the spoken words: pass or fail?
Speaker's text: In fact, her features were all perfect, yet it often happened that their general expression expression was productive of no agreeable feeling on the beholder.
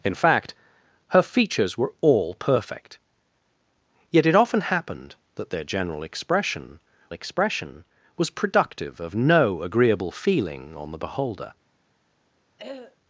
pass